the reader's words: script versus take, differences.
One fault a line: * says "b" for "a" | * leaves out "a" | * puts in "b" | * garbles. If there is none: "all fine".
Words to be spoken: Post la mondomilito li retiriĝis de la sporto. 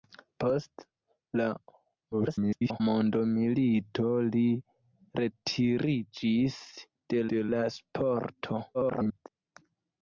* garbles
* puts in "de"
* garbles